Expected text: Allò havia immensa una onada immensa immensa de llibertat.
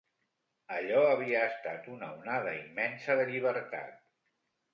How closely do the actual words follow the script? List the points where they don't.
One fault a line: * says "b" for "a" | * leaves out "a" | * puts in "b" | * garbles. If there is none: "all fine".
* says "estat" for "immensa"
* leaves out "immensa"